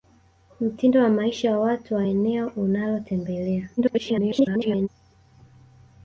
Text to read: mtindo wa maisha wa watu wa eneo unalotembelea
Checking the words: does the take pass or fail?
fail